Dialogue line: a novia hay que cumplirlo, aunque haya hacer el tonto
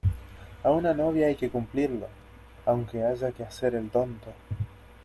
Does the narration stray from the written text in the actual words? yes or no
yes